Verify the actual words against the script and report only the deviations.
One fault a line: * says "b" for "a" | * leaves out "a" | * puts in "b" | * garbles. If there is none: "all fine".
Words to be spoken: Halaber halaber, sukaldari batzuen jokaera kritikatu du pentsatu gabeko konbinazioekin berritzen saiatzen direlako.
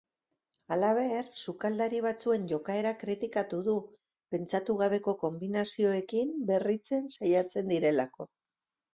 * leaves out "halaber"